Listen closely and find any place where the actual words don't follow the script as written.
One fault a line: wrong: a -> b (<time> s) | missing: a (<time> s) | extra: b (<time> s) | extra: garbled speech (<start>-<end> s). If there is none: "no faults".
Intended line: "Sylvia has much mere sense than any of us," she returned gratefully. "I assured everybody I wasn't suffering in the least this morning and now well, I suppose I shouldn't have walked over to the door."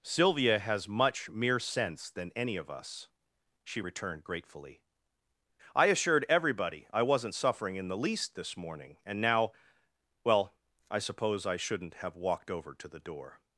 no faults